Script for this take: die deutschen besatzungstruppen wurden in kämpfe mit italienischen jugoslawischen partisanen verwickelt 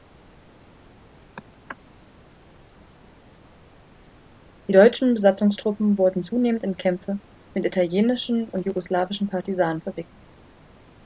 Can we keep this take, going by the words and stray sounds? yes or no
no